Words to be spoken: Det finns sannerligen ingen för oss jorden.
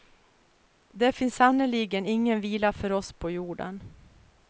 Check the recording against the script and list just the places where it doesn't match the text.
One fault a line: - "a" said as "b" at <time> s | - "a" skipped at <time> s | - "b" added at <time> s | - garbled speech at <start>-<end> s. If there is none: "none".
- "vila" added at 2.4 s
- "på" added at 3.1 s